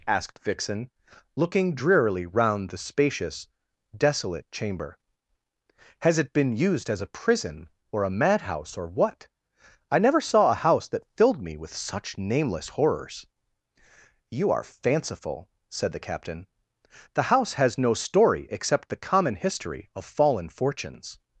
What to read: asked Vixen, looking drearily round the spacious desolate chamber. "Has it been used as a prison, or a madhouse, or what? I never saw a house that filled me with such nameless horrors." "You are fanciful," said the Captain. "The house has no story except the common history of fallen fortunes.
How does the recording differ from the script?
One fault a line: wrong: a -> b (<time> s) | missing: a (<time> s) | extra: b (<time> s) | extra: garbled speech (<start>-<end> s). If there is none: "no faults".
no faults